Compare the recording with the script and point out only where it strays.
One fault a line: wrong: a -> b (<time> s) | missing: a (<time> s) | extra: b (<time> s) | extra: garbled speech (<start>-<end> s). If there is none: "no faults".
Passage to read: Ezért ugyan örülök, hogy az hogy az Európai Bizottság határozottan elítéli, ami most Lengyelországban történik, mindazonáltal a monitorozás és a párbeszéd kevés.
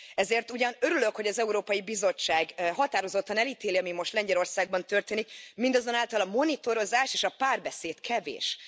missing: hogy az (1.4 s)